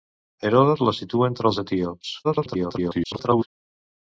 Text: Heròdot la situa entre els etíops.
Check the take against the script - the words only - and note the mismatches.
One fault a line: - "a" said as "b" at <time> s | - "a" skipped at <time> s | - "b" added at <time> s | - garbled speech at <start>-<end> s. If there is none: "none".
- garbled speech at 2.2-3.5 s